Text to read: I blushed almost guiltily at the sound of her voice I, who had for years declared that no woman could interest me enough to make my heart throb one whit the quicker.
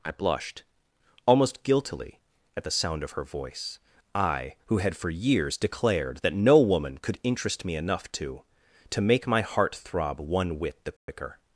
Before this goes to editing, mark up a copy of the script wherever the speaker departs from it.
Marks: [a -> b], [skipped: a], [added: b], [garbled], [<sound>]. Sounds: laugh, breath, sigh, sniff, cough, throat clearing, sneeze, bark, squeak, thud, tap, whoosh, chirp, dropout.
I blushed almost guiltily at the sound of her voice I, who had for years declared that no woman could interest me enough to [added: to] make my heart throb one whit the quicker. [dropout]